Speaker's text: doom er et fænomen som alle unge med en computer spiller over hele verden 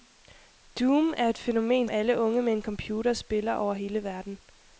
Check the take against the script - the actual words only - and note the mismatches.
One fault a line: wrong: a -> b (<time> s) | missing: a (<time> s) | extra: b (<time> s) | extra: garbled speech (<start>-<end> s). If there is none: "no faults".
missing: som (1.9 s)